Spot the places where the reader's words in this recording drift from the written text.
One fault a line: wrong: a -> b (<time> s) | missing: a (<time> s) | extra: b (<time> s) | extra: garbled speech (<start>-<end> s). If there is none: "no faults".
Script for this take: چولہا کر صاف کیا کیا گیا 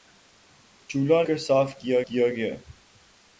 no faults